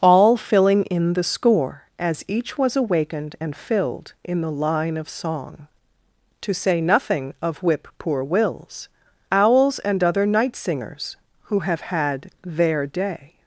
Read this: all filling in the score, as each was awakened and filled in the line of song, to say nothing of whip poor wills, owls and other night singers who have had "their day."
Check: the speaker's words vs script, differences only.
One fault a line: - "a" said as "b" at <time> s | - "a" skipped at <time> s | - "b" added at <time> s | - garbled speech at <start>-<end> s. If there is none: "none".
none